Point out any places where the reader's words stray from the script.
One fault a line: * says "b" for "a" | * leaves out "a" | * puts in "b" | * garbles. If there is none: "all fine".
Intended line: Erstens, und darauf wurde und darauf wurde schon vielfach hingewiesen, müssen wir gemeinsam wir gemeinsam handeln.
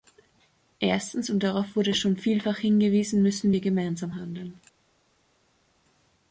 * leaves out "und darauf wurde"
* leaves out "wir gemeinsam"